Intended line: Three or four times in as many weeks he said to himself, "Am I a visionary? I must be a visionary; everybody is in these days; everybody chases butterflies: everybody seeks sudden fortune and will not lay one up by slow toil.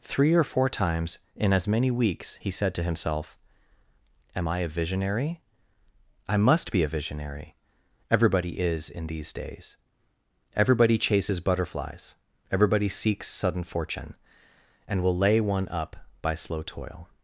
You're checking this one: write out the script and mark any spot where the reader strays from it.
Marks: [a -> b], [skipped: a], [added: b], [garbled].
Three or four times in as many weeks he said to himself, "Am I a visionary? I must be a visionary; everybody is in these days; everybody chases butterflies: everybody seeks sudden fortune and will [skipped: not] lay one up by slow toil.